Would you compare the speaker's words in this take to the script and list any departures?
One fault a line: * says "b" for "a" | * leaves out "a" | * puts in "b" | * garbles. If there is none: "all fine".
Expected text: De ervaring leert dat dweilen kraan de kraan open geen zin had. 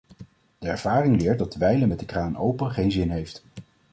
* says "met" for "kraan"
* says "heeft" for "had"